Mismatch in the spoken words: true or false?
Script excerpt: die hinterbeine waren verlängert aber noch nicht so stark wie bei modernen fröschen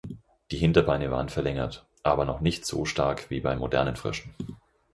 false